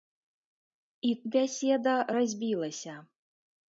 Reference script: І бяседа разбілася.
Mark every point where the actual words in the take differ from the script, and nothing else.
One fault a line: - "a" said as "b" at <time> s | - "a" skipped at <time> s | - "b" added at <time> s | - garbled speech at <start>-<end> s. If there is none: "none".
none